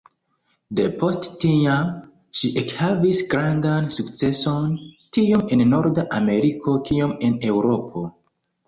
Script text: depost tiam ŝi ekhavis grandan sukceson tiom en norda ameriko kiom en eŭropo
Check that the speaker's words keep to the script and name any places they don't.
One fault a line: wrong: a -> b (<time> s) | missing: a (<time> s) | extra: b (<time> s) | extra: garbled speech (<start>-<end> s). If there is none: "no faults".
no faults